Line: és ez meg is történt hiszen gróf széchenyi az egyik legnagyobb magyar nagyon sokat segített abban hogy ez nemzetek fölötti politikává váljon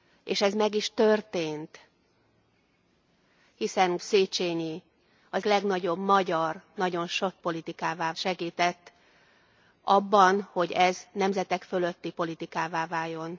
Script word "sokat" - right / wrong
wrong